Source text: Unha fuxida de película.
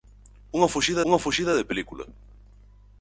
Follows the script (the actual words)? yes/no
no